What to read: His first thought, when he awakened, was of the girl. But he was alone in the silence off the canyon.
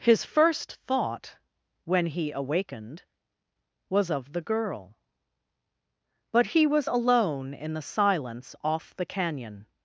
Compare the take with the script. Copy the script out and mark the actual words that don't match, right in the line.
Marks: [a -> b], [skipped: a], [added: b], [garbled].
His first thought, when he awakened, was of the girl. But he was alone in the silence off the canyon.